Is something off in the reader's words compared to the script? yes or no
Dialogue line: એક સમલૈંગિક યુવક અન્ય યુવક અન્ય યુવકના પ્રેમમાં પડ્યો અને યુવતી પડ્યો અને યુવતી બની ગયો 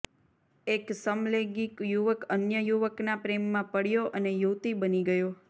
yes